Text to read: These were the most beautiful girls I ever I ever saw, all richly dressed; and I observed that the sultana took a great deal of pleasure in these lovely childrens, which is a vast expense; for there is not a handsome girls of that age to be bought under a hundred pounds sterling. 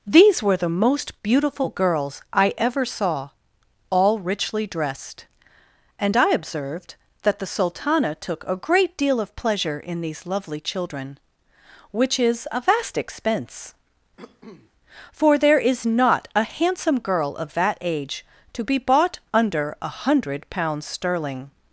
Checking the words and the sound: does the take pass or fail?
fail